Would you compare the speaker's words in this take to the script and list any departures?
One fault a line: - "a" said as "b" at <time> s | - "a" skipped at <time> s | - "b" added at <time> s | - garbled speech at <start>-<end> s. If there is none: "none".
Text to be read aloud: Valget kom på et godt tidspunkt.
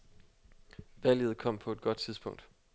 none